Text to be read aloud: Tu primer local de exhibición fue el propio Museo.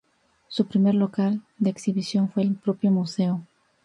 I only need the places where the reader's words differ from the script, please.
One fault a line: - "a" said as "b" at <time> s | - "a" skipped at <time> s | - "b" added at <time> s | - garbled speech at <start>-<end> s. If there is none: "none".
- "Tu" said as "Su" at 0.5 s